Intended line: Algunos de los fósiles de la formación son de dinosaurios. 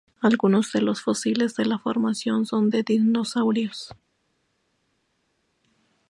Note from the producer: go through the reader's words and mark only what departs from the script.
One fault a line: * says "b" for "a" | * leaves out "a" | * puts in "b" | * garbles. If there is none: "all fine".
all fine